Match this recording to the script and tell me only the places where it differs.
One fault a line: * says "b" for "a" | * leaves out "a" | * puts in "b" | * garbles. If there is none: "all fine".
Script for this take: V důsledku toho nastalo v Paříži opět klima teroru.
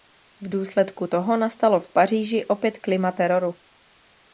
all fine